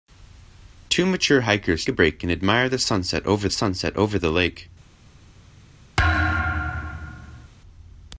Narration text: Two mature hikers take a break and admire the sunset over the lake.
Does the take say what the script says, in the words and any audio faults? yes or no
no